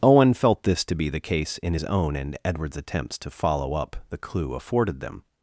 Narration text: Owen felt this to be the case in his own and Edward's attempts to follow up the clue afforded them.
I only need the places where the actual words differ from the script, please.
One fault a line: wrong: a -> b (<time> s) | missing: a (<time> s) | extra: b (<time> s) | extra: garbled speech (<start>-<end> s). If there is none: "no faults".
no faults